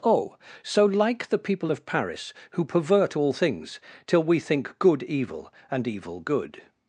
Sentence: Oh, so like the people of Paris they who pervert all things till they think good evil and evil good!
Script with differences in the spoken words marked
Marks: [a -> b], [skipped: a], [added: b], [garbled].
Oh, so like the people of Paris [skipped: they] who pervert all things till [they -> we] think good evil and evil good!